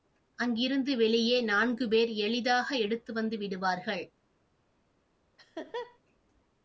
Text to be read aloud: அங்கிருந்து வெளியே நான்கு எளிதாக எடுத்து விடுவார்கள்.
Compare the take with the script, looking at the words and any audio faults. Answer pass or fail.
fail